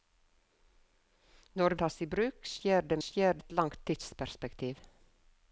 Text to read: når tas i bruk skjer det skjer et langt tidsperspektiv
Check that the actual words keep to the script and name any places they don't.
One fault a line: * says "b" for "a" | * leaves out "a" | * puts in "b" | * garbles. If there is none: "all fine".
all fine